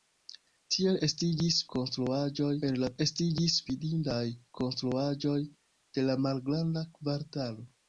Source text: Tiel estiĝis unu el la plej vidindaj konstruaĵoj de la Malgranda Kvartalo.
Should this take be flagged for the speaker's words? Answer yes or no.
yes